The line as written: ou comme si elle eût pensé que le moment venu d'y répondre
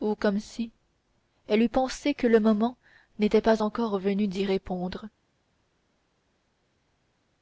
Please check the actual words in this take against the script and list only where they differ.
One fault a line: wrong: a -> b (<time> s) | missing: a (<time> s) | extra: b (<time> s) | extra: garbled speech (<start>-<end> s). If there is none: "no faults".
extra: n'était pas encore (3.2 s)